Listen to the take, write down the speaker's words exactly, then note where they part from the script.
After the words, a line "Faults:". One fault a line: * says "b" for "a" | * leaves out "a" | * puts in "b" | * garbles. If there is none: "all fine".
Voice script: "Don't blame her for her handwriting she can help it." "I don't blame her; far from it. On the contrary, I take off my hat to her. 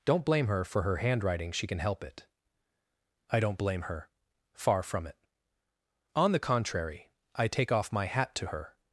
"Don't blame her for her handwriting she can help it." "I don't blame her; far from it. On the contrary, I take off my hat to her.
Faults:
all fine